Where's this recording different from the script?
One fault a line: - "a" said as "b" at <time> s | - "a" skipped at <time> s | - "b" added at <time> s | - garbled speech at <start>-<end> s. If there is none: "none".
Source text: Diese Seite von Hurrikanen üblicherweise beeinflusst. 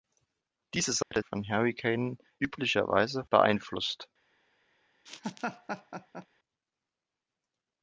none